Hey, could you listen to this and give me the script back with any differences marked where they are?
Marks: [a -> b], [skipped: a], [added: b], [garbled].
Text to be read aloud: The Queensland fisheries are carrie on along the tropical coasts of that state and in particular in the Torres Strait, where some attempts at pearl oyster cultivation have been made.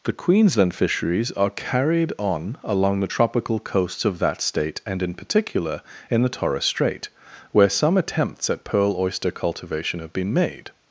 The Queensland fisheries are [carrie -> carried] on along the tropical coasts of that state and in particular in the Torres Strait, where some attempts at pearl oyster cultivation have been made.